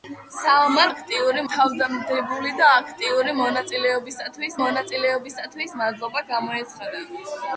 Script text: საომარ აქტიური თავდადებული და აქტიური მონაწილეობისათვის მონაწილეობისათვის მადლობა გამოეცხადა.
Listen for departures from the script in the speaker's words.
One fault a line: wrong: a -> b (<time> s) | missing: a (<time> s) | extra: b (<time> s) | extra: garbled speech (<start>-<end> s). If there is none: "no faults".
no faults